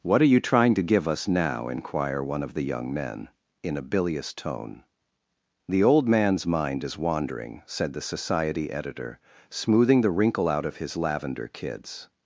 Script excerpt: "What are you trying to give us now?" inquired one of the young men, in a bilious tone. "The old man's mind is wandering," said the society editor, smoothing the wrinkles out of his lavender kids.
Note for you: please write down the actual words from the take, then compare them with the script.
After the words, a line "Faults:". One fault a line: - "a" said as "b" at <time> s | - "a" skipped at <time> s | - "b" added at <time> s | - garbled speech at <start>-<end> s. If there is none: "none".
"What are you trying to give us now?" inquire one of the young men, in a bilious tone. "The old man's mind is wandering," said the society editor, smoothing the wrinkle out of his lavender kids.
Faults:
- "inquired" said as "inquire" at 1.7 s
- "wrinkles" said as "wrinkle" at 10.1 s